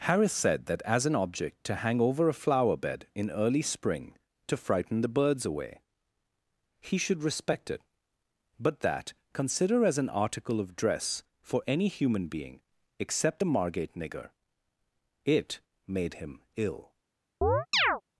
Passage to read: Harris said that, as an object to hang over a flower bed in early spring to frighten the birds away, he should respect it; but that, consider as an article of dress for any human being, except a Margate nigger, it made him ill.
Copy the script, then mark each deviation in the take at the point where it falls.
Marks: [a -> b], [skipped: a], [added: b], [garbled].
Harris said that, as an object to hang over a flower bed in early spring to frighten the birds away, he should respect it; but that, consider as an article of dress for any human being, except a Margate nigger, it made him ill.